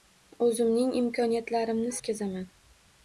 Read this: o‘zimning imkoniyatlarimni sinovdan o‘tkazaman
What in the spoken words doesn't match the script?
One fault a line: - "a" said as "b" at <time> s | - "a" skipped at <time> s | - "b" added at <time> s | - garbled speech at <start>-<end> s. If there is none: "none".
- "sinovdan" skipped at 1.9 s